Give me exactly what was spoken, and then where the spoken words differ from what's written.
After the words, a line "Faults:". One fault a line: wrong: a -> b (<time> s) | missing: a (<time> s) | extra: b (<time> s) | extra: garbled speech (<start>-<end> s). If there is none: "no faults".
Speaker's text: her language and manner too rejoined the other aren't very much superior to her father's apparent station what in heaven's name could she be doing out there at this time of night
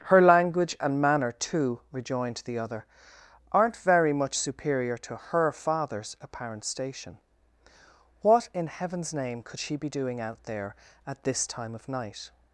her language and manner too rejoined the other aren't very much superior to her father's apparent station what in heaven's name could she be doing out there at this time of night
Faults:
no faults